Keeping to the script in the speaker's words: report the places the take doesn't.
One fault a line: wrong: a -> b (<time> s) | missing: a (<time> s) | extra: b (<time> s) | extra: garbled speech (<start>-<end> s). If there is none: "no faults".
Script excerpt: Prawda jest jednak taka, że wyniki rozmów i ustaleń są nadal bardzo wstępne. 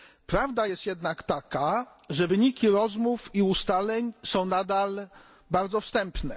no faults